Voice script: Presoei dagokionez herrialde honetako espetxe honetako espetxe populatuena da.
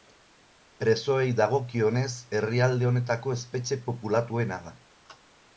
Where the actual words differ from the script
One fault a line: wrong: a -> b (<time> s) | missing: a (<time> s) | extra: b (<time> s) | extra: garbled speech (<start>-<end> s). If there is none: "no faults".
missing: honetako espetxe (3.8 s)